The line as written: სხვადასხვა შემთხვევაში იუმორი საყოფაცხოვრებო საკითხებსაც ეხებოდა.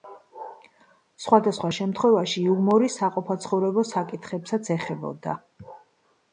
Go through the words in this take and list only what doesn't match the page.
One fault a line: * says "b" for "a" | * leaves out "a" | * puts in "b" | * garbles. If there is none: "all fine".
all fine